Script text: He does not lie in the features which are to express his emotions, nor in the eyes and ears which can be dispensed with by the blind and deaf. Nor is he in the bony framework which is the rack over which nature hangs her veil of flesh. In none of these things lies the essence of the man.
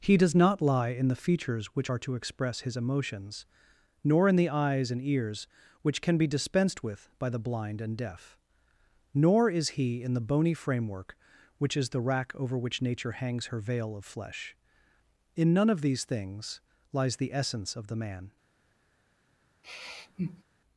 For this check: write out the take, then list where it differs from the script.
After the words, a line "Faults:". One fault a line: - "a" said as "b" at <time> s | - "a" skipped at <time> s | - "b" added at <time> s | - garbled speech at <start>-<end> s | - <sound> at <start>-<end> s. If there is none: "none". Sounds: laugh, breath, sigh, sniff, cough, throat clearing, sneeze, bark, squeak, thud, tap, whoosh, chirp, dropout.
He does not lie in the features which are to express his emotions, nor in the eyes and ears which can be dispensed with by the blind and deaf. Nor is he in the bony framework which is the rack over which nature hangs her veil of flesh. In none of these things lies the essence of the man.
Faults:
- sigh at 19.6-20.4 s